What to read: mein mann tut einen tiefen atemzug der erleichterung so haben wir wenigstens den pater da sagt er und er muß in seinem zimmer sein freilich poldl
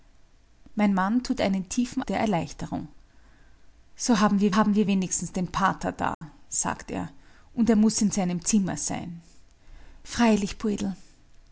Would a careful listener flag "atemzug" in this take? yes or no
yes